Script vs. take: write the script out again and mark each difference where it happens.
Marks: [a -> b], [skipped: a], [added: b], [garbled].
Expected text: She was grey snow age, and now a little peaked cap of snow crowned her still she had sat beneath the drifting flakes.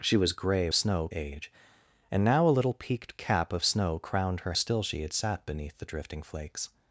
She was grey snow age, and now a little peaked cap of snow crowned her still she had sat beneath the drifting flakes.